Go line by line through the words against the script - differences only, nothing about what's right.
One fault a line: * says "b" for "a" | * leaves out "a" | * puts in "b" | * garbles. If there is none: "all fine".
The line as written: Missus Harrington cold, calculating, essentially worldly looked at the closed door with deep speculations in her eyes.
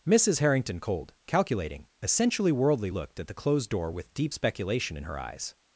* says "speculation" for "speculations"